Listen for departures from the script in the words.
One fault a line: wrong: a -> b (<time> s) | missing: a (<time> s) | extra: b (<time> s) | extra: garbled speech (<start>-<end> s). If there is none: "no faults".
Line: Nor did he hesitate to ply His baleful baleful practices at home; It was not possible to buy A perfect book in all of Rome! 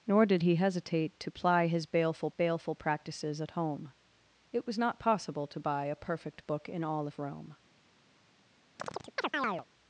no faults